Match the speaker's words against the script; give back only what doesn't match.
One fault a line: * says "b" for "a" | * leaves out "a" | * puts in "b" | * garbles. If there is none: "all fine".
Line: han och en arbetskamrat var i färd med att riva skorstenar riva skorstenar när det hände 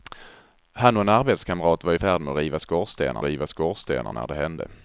all fine